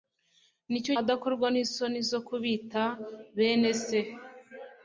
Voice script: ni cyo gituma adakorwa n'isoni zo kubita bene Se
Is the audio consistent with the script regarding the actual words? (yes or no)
no